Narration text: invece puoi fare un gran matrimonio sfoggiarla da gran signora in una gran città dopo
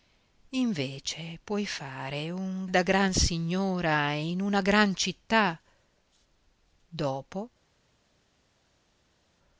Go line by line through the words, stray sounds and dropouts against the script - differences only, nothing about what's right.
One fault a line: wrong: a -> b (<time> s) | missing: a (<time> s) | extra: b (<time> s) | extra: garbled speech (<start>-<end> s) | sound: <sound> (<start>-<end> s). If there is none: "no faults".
missing: gran matrimonio sfoggiarla (2.6 s)